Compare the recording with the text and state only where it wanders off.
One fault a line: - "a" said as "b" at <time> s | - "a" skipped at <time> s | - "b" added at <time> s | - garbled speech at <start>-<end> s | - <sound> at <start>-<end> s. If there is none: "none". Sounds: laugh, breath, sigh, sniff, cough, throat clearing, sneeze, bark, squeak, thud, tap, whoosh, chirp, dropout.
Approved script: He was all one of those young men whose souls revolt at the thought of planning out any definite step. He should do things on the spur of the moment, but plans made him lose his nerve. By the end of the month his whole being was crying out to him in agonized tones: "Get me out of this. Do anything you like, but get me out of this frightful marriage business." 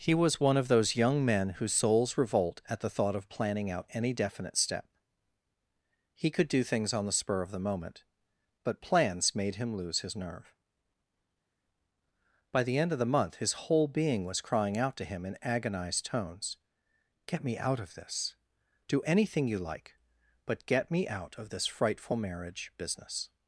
- "all" skipped at 0.4 s
- "should" said as "could" at 6.3 s